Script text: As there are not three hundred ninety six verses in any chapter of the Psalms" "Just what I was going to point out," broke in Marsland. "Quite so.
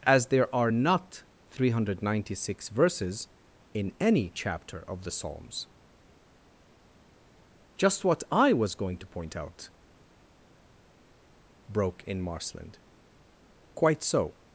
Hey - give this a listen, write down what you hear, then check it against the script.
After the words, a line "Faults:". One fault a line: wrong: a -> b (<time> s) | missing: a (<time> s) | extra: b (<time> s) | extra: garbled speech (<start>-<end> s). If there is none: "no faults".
As there are not three hundred ninety six verses in any chapter of the Psalms" "Just what I was going to point out," broke in Marsland. "Quite so.
Faults:
no faults